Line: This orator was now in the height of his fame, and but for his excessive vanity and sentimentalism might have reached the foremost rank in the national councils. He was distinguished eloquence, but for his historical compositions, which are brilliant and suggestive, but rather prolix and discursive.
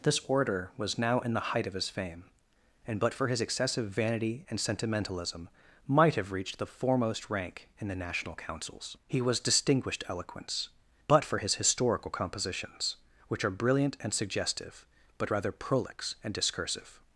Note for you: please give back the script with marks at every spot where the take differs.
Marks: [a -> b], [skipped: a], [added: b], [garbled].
This orator was now in the height of his fame, and but for his excessive vanity and sentimentalism might have reached the foremost rank in the national councils. He was distinguished eloquence, but for his historical compositions, which are brilliant and suggestive, but rather prolix and discursive.